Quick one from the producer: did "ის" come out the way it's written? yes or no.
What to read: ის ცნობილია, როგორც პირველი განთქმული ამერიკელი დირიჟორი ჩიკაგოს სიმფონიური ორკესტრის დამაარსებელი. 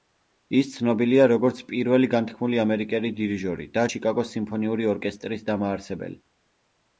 yes